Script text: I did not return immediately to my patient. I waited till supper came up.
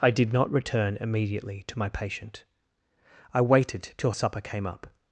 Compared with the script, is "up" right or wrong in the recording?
right